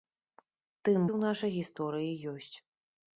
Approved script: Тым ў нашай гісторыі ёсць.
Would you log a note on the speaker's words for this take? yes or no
no